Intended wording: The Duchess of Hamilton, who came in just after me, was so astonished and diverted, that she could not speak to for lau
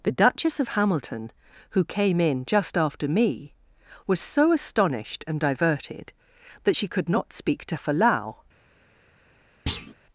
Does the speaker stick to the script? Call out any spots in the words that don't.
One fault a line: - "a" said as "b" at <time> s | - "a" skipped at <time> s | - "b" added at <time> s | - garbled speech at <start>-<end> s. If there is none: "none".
none